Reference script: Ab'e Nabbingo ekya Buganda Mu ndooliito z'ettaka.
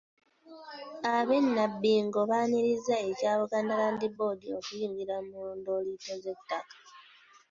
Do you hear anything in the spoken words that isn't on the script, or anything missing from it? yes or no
yes